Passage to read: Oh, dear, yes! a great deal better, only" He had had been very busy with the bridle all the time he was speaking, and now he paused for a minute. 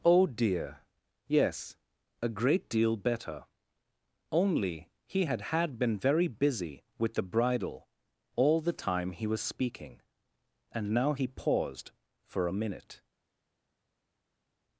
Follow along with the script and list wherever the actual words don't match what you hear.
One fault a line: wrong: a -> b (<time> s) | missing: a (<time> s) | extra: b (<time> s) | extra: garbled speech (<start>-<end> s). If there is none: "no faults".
no faults